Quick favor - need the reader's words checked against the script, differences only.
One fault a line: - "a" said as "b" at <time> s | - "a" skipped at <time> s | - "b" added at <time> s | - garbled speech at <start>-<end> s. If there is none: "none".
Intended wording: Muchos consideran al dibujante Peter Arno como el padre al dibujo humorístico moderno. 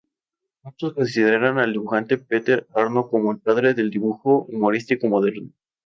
- "al" said as "del" at 3.8 s